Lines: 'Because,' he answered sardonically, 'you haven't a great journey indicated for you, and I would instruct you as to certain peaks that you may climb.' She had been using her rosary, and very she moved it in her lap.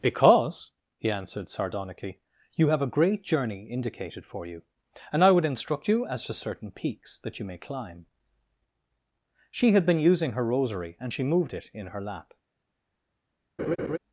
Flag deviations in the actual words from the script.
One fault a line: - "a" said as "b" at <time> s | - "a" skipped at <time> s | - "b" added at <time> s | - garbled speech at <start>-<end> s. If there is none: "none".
- "haven't" said as "have" at 2.7 s
- "very" skipped at 11.1 s